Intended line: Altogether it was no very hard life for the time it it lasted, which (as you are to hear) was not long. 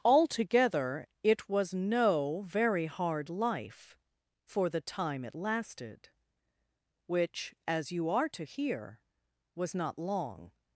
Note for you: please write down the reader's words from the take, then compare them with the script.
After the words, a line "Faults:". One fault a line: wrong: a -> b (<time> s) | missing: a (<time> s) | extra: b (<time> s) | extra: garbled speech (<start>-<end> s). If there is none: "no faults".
Altogether it was no very hard life for the time it lasted, which (as you are to hear) was not long.
Faults:
missing: it (5.3 s)